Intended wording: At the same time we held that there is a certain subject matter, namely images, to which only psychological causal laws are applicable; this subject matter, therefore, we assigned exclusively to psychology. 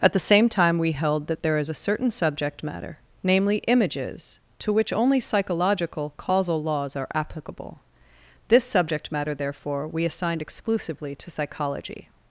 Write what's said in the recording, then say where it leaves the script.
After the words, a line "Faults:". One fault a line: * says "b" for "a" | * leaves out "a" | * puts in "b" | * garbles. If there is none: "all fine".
At the same time we held that there is a certain subject matter, namely images, to which only psychological causal laws are applicable; this subject matter, therefore, we assigned exclusively to psychology.
Faults:
all fine